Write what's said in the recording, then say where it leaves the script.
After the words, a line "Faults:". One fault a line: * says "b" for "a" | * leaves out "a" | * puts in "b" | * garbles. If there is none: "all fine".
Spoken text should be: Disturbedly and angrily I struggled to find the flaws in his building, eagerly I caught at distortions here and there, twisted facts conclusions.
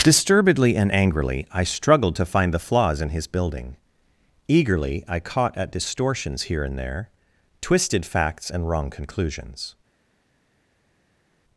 Disturbedly and angrily I struggled to find the flaws in his building, eagerly I caught at distortions here and there, twisted facts and wrong conclusions.
Faults:
* puts in "and wrong"